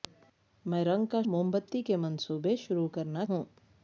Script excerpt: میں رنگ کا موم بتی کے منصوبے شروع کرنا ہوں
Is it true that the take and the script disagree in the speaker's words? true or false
false